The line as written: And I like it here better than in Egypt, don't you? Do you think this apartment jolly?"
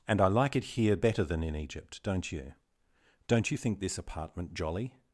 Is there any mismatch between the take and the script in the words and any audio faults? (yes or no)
yes